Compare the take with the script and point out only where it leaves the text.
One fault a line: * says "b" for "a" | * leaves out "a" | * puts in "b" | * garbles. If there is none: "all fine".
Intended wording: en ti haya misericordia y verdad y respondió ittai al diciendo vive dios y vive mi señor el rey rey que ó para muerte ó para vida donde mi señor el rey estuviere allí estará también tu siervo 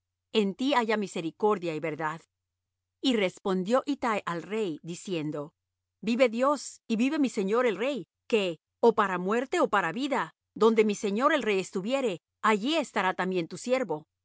* puts in "rey"
* leaves out "rey"